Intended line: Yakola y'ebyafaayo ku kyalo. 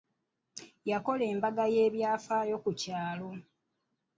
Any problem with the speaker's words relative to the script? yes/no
yes